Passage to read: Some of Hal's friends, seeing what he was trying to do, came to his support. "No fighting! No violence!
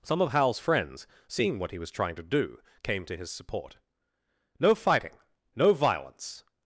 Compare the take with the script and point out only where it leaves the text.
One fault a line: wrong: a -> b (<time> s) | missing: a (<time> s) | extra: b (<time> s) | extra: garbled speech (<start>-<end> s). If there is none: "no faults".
no faults